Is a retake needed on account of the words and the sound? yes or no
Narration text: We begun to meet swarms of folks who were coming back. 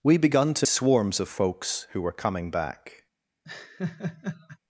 yes